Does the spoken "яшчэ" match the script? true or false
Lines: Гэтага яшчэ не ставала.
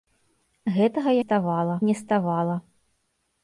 false